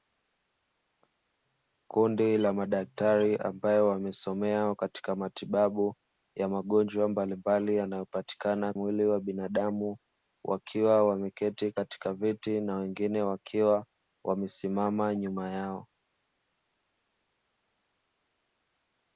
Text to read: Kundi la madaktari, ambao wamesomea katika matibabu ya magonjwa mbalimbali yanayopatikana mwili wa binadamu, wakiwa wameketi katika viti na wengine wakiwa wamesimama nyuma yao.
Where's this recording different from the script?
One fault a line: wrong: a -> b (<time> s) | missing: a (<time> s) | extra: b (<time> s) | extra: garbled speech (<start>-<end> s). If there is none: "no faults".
no faults